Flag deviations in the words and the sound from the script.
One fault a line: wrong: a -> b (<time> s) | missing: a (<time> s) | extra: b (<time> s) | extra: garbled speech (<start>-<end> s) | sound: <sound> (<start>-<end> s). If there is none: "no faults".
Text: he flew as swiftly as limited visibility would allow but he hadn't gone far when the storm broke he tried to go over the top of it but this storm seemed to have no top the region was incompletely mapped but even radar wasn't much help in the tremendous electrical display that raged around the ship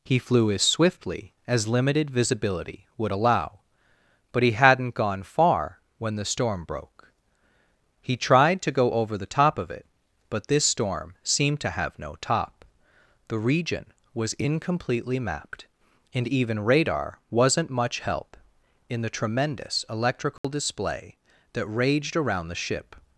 wrong: but -> and (16.1 s)
sound: dropout (20.4-20.4 s)